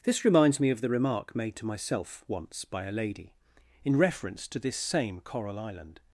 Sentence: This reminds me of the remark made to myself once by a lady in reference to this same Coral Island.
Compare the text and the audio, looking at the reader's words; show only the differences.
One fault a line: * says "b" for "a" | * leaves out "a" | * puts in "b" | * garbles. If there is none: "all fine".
all fine